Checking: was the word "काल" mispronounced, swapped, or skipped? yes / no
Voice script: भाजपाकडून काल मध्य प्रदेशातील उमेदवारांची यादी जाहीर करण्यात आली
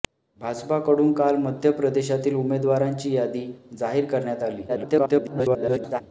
no